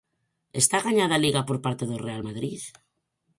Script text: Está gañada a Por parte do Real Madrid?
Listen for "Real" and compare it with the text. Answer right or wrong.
right